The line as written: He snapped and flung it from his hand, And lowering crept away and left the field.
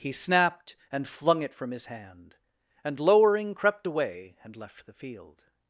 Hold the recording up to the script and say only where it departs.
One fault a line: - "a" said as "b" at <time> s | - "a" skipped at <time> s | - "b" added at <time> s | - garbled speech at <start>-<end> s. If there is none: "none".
none